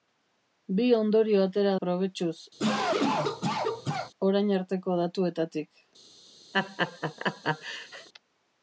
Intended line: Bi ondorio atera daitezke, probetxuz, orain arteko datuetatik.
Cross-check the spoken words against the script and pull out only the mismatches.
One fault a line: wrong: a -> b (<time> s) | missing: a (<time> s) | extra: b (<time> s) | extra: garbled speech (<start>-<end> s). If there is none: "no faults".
missing: daitezke (1.7 s)